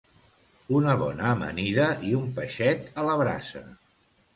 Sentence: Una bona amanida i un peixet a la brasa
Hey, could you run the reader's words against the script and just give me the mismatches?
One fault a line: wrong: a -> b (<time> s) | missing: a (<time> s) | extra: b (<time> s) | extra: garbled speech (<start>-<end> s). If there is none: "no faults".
no faults